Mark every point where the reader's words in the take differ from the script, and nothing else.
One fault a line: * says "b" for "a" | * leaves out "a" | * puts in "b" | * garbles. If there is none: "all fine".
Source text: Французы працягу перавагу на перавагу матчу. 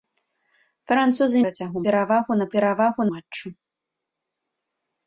all fine